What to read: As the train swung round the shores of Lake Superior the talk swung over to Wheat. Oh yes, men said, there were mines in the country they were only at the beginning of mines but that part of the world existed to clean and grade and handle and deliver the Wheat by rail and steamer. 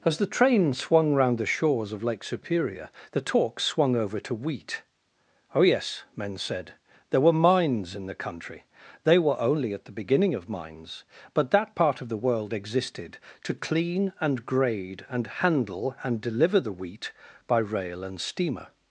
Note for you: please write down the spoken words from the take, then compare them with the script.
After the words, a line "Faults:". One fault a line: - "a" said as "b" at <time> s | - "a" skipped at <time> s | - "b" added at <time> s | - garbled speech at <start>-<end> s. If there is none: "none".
As the train swung round the shores of Lake Superior the talk swung over to Wheat. Oh yes, men said, there were mines in the country they were only at the beginning of mines but that part of the world existed to clean and grade and handle and deliver the Wheat by rail and steamer.
Faults:
none